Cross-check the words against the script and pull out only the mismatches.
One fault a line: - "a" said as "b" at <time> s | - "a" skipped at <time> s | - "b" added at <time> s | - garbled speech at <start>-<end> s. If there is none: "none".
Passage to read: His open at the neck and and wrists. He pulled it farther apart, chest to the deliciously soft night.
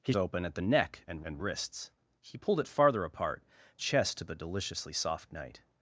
none